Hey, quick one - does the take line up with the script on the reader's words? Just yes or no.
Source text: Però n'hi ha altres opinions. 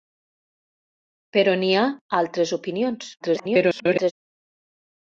no